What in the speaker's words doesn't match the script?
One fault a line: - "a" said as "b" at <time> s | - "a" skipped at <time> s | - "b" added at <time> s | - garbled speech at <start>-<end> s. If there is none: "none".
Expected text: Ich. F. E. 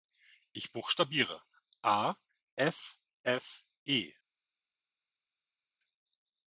- "buchstabiere A F" added at 0.7 s